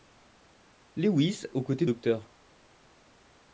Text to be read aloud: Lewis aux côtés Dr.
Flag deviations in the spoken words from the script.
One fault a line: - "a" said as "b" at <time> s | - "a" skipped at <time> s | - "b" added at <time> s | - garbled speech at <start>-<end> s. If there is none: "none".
none